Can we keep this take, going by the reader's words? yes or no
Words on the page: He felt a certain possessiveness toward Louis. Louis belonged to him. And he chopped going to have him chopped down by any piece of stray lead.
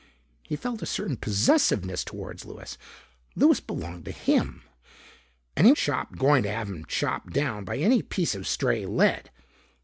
yes